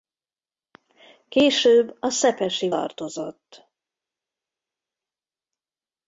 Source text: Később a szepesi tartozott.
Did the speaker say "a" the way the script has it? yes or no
yes